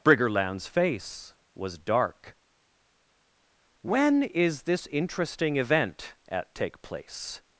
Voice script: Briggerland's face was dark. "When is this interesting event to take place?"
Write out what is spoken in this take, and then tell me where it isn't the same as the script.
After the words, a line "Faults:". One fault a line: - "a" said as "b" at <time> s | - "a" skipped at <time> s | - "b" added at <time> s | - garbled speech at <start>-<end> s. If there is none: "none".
Briggerland's face was dark. "When is this interesting event at take place?"
Faults:
- "to" said as "at" at 6.3 s